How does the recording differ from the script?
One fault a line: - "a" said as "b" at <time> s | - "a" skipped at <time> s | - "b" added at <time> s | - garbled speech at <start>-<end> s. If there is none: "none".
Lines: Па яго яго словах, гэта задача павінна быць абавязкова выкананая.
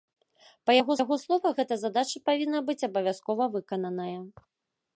none